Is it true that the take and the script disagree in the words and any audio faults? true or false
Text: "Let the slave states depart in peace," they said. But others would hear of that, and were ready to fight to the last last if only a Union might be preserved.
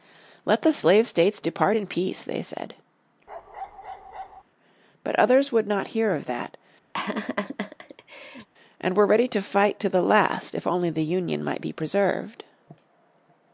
true